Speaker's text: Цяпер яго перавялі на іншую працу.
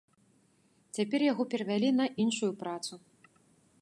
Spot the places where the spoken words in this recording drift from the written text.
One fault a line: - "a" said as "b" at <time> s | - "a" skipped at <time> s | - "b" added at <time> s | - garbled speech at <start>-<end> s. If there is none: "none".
none